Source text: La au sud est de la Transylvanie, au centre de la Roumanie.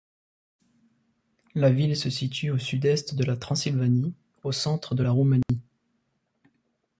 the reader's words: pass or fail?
fail